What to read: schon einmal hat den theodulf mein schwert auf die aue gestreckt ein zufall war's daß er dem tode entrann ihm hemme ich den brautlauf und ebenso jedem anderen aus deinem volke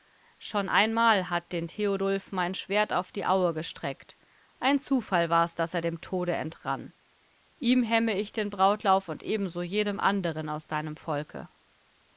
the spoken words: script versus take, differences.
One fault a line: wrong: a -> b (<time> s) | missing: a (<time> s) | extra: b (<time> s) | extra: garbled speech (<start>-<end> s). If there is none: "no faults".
no faults